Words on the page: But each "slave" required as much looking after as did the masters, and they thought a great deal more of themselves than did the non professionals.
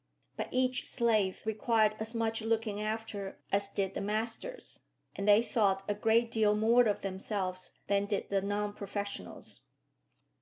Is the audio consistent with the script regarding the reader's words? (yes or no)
yes